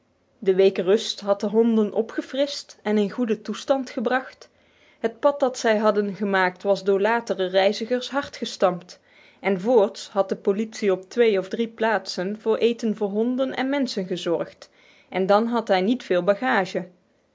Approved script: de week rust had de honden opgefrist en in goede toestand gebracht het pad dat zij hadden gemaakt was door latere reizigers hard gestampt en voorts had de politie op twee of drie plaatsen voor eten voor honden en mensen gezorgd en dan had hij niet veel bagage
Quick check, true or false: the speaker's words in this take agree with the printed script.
true